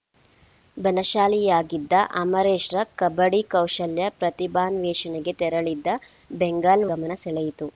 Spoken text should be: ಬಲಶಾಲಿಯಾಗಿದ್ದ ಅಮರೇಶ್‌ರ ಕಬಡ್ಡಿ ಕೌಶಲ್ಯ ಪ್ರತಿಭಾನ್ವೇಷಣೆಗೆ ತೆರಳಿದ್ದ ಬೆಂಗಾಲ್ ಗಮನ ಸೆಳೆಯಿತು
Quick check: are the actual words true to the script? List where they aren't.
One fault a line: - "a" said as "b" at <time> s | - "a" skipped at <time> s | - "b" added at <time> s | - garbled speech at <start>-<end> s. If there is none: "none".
none